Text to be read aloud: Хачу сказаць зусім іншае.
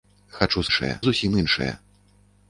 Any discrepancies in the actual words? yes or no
yes